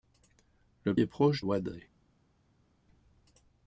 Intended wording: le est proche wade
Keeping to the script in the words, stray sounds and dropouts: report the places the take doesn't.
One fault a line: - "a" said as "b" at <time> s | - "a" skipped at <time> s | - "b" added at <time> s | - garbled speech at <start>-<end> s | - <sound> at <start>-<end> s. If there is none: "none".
none